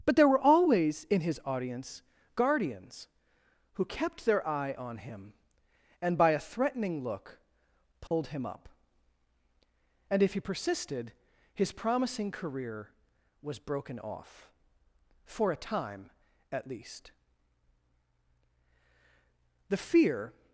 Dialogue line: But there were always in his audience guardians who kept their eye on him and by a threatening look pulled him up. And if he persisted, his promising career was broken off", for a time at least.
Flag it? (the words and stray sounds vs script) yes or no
yes